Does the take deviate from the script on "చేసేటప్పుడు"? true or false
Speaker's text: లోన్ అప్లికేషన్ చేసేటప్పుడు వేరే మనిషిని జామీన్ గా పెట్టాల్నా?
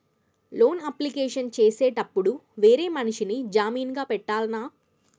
false